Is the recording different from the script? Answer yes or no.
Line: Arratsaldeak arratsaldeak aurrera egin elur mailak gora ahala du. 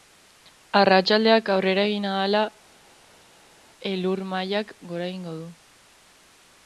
yes